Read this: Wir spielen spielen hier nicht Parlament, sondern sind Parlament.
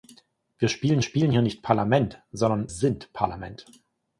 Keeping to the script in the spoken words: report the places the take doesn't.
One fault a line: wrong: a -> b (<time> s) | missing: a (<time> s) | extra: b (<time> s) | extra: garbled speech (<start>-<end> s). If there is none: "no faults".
no faults